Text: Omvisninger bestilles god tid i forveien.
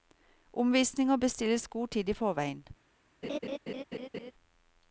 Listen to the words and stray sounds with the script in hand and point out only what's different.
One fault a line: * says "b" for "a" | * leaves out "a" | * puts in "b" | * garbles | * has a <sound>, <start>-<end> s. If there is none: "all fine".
* has a laugh, 3.2-4.3 s